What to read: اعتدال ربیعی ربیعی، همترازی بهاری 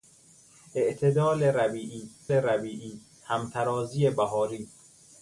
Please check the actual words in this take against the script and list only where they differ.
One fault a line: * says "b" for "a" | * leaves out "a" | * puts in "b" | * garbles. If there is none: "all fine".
all fine